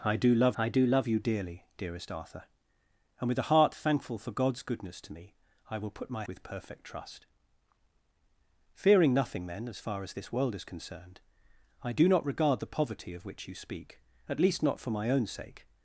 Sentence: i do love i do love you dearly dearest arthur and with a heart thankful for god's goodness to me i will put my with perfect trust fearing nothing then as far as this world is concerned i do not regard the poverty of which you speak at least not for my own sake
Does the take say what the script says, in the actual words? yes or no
yes